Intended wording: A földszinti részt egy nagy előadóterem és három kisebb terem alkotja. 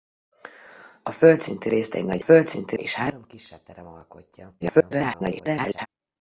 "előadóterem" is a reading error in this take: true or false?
true